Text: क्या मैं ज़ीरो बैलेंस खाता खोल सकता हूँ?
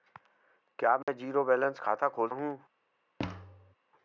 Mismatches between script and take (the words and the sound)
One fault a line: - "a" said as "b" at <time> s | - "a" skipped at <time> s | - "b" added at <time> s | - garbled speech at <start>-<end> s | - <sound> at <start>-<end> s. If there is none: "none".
- dropout at 1.0-1.1 s
- "सकता" skipped at 2.3 s
- thud at 3.2-3.7 s